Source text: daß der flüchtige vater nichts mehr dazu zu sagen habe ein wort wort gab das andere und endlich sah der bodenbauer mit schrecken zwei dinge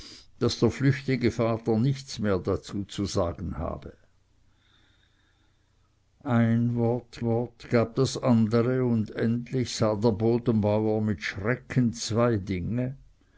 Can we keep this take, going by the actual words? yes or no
yes